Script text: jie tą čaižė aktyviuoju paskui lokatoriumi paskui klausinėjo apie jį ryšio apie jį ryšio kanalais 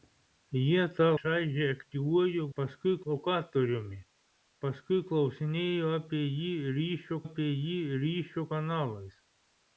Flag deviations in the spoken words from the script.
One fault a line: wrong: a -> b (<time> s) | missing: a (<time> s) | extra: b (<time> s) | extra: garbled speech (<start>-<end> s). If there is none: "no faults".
no faults